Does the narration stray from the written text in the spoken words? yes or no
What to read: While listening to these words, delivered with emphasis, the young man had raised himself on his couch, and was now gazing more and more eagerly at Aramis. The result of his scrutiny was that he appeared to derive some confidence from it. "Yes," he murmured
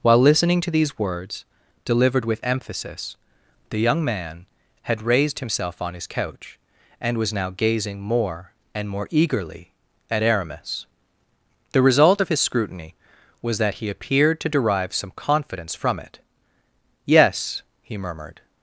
no